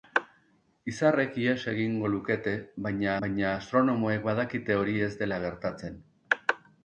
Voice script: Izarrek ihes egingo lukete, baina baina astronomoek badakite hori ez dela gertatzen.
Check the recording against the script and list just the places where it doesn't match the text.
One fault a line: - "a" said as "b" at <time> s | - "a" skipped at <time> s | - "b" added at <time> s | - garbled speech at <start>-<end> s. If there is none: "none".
none